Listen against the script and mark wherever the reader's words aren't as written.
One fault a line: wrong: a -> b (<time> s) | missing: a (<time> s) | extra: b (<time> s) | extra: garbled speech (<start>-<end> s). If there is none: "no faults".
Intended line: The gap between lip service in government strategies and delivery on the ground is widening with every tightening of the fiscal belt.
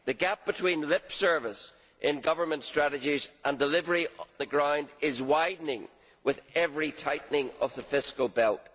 missing: on (4.1 s)